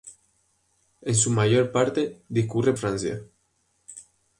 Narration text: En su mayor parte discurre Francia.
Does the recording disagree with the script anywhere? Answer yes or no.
no